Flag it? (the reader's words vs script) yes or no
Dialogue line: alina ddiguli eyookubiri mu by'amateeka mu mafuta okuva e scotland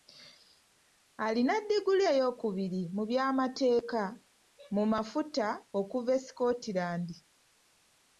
no